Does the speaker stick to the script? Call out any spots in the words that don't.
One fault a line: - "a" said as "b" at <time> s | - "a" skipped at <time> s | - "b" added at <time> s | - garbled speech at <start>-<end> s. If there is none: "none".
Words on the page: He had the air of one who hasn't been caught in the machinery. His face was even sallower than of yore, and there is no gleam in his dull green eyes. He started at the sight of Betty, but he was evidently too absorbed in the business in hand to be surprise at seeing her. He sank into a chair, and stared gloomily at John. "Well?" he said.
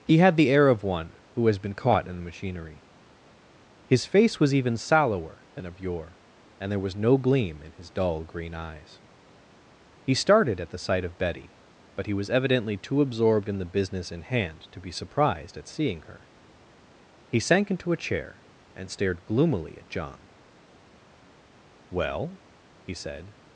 - "hasn't" said as "has" at 1.5 s
- "is" said as "was" at 6.8 s
- "surprise" said as "surprised" at 14.9 s